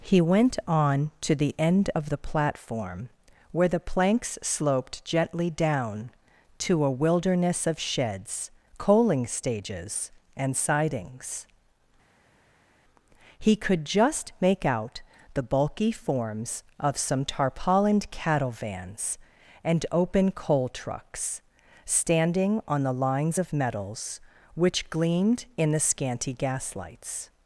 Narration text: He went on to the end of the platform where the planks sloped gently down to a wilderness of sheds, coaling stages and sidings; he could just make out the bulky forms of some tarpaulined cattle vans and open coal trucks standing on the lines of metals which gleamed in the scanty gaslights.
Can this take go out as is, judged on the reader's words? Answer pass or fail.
pass